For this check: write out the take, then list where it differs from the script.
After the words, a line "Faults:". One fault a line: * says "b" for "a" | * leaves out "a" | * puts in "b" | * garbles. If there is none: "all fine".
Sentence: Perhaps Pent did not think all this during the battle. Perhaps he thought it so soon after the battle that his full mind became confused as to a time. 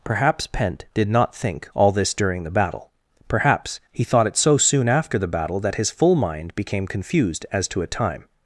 Perhaps Pent did not think all this during the battle. Perhaps he thought it so soon after the battle that his full mind became confused as to a time.
Faults:
all fine